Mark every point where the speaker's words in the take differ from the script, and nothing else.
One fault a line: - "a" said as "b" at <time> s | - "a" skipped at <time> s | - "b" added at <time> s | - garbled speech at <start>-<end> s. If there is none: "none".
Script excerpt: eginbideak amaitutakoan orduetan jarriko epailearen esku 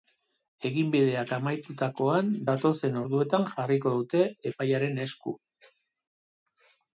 - "datozen" added at 2.5 s
- "dute" added at 4.0 s